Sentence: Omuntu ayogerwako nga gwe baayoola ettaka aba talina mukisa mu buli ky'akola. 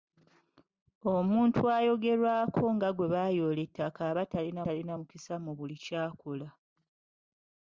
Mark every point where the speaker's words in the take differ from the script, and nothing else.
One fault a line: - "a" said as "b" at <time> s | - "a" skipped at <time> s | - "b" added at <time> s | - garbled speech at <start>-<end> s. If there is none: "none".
- "talina" added at 4.6 s